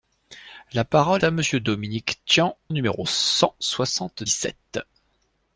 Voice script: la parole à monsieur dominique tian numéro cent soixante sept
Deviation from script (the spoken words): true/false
false